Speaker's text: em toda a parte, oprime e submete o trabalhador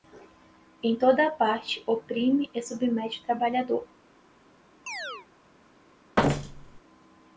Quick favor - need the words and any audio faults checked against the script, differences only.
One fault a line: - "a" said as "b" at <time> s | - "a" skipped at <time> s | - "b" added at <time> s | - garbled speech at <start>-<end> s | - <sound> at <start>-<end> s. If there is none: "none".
- chirp at 4.9-5.3 s
- thud at 6.2-6.8 s